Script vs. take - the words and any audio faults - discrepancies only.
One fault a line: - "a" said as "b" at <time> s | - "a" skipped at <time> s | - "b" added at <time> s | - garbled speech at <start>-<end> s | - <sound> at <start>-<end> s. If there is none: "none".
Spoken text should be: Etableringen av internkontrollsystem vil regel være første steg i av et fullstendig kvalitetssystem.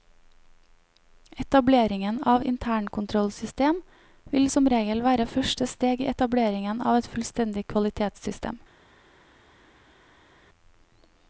- "som" added at 4.5 s
- "etableringen" added at 6.1 s